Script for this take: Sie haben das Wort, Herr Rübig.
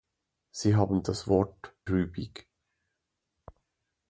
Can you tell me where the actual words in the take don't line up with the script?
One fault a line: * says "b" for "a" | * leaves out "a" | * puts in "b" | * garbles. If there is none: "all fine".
* leaves out "Herr"